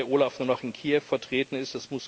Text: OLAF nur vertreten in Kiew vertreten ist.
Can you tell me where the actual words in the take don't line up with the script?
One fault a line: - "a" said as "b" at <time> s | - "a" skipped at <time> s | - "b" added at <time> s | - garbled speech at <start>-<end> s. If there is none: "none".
- "vertreten" said as "noch" at 0.5 s